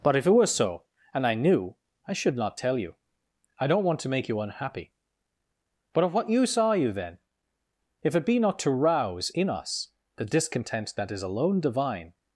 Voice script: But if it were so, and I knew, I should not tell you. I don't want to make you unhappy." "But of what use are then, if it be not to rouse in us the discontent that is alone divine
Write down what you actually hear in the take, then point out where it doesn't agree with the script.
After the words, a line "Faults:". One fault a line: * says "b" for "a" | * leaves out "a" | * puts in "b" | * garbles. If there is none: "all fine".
But if it were so, and I knew, I should not tell you. I don't want to make you unhappy." "But of what use are you then, if it be not to rouse in us the discontent that is alone divine
Faults:
* puts in "you"